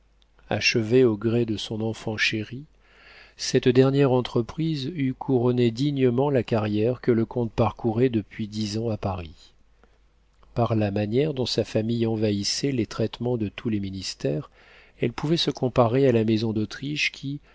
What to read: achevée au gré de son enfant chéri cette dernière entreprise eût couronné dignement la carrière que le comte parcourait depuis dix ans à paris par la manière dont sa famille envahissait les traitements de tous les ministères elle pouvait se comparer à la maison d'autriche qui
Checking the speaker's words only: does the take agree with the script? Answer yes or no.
yes